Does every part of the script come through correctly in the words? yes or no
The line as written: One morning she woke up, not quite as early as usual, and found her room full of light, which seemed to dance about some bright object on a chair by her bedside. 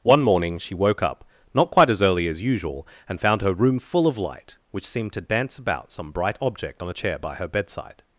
yes